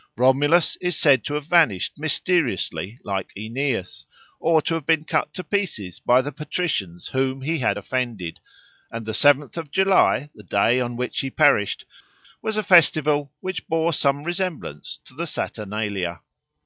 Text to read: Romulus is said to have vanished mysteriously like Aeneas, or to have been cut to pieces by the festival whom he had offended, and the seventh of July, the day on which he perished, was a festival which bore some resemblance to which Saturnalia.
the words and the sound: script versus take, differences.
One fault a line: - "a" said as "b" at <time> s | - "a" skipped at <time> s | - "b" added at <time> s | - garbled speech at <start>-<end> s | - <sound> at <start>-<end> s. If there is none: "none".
- "festival" said as "patricians" at 6.3 s
- "which" said as "the" at 15.1 s